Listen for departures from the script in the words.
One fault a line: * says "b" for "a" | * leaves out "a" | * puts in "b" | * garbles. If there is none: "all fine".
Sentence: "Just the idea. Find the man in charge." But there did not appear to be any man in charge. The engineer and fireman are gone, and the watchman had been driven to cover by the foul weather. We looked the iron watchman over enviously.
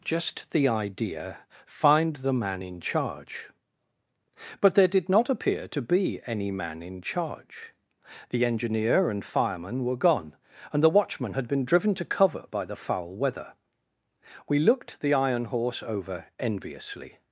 * says "were" for "are"
* says "horse" for "watchman"